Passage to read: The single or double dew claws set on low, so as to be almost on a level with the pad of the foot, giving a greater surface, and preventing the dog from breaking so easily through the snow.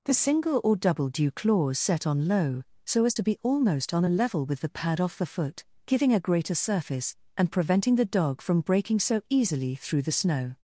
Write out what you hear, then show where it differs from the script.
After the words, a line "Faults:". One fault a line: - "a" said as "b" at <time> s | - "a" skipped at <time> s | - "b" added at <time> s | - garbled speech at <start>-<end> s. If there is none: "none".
The single or double dew claws set on low, so as to be almost on a level with the pad off the foot, giving a greater surface, and preventing the dog from breaking so easily through the snow.
Faults:
- "of" said as "off" at 5.0 s